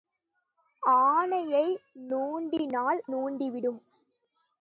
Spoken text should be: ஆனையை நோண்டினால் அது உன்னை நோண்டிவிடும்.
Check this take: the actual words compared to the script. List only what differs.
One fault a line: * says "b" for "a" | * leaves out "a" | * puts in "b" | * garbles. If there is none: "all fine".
* leaves out "அது உன்னை"